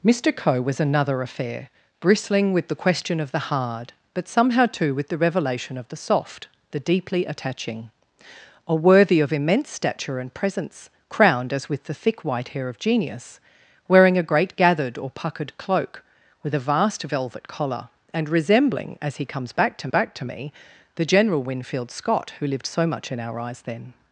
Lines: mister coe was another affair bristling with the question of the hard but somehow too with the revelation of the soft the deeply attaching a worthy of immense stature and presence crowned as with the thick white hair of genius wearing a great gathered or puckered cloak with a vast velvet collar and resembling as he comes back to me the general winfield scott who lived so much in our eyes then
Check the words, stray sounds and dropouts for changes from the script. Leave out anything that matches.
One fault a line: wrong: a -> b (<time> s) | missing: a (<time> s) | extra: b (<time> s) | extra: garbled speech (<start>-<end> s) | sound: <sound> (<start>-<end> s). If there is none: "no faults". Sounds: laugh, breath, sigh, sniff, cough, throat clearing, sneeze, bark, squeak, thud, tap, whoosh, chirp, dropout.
extra: back to (19.9 s)